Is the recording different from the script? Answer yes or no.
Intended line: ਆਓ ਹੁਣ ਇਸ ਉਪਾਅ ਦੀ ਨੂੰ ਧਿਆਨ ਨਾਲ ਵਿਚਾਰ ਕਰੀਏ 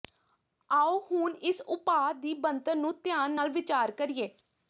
yes